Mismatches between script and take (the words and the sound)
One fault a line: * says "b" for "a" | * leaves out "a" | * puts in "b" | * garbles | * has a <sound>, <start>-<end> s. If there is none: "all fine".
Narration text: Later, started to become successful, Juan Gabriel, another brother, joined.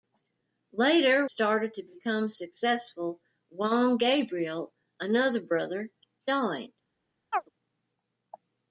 * has a chirp, 7.3-7.5 s